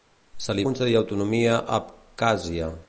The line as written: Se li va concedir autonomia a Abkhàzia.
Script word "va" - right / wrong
wrong